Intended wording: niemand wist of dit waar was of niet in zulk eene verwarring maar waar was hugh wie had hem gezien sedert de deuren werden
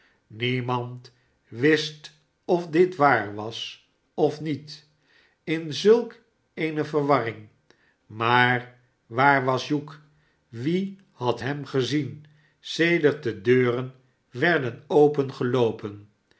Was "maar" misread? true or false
false